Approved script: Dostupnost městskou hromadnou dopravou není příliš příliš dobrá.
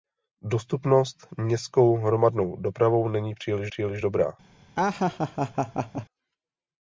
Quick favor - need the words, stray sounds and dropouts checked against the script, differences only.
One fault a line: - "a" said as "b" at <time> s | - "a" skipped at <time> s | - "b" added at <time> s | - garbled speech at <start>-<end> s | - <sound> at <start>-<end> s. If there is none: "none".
- laugh at 4.8-6.1 s